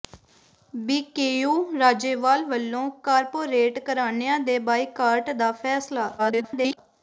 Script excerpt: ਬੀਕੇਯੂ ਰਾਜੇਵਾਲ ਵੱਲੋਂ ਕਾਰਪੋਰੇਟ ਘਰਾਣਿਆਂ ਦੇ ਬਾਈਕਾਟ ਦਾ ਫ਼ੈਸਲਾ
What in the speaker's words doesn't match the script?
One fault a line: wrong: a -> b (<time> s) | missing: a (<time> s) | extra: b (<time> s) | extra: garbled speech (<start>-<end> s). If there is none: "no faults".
extra: garbled speech (6.2-6.8 s)